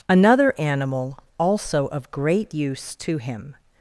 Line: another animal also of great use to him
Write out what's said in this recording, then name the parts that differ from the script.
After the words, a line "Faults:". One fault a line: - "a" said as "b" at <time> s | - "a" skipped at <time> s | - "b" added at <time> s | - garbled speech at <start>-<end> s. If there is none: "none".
another animal also of great use to him
Faults:
none